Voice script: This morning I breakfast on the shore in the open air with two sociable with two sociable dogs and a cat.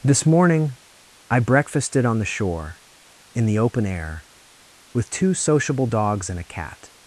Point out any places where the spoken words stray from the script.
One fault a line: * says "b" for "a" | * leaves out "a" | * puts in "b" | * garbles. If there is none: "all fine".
* says "breakfasted" for "breakfast"
* leaves out "with two sociable"